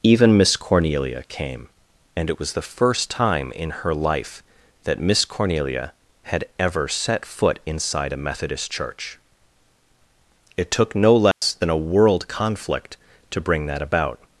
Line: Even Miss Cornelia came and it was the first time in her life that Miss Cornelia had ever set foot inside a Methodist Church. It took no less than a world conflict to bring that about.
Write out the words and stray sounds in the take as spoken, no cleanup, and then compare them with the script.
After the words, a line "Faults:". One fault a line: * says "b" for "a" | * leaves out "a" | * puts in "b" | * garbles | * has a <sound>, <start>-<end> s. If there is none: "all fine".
Even Miss Cornelia came and it was the first time in her life that Miss Cornelia had ever set foot inside a Methodist Church. It took no less than a world conflict to bring that about.
Faults:
* has a dropout, 11.3-11.4 s